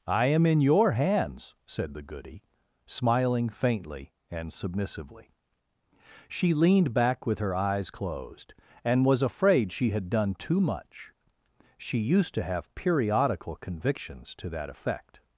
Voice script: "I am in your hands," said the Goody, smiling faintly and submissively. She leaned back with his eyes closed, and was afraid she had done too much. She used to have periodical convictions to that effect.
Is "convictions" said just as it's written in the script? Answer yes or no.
yes